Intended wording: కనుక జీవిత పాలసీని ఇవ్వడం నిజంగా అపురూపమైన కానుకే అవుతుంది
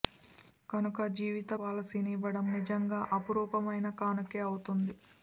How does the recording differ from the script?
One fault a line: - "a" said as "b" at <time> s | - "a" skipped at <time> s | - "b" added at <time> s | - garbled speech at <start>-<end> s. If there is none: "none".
none